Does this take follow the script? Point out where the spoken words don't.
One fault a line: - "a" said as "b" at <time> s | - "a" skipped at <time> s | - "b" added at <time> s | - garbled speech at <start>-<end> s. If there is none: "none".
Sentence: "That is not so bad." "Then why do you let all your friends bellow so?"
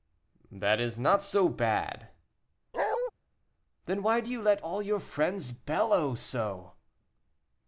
none